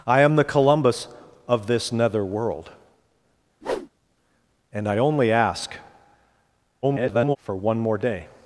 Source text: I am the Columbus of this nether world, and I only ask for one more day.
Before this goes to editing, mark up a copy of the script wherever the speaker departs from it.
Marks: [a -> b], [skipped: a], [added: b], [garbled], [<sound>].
I am the Columbus of this nether world, [whoosh] and I only ask [garbled] for one more day.